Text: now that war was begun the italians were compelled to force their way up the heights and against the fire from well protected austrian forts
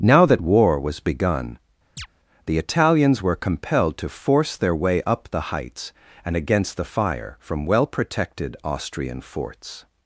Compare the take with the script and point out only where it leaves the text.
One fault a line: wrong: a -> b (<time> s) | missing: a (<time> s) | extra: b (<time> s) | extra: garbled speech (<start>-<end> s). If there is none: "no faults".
no faults